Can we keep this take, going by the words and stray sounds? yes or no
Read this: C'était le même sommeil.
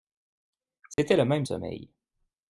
no